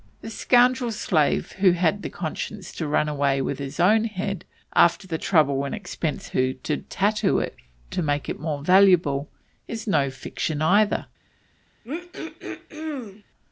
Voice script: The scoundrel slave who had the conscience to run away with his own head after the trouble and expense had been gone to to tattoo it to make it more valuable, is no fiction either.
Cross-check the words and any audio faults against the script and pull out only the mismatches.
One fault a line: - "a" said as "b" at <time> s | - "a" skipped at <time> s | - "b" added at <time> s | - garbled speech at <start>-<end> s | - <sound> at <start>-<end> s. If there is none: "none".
- "had been gone" skipped at 6.3 s
- throat clearing at 11.8-13.2 s